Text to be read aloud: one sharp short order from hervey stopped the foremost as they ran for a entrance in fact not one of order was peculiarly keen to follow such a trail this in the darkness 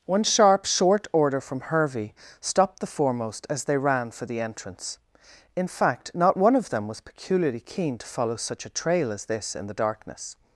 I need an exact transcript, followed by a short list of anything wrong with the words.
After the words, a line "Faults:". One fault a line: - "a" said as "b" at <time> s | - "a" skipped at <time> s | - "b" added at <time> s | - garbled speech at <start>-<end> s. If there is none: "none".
one sharp short order from hervey stopped the foremost as they ran for the entrance in fact not one of them was peculiarly keen to follow such a trail as this in the darkness
Faults:
- "a" said as "the" at 4.2 s
- "order" said as "them" at 6.7 s
- "as" added at 9.1 s